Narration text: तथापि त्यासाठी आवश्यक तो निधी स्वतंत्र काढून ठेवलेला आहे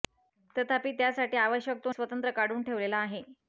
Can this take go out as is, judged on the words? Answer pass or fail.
fail